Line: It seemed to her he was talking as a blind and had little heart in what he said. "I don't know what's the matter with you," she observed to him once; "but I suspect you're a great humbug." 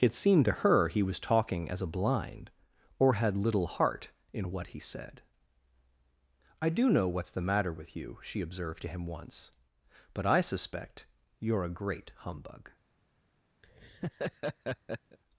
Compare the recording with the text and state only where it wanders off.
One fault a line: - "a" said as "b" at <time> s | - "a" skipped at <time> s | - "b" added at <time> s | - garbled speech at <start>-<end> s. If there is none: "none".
- "and" said as "or" at 3.0 s
- "don't" said as "do" at 6.7 s